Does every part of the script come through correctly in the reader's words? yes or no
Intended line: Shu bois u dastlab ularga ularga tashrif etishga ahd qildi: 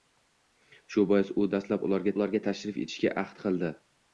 yes